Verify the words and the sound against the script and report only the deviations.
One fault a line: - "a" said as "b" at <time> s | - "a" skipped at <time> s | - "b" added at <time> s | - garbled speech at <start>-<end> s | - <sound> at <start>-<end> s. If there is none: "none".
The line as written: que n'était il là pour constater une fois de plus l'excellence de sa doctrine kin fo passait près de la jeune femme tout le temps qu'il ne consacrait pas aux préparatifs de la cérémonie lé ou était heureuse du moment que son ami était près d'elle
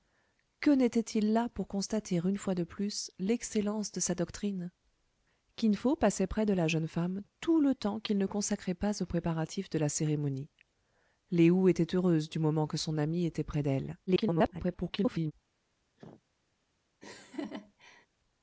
- garbled speech at 14.1-15.3 s
- cough at 16.0-16.2 s
- laugh at 17.0-18.1 s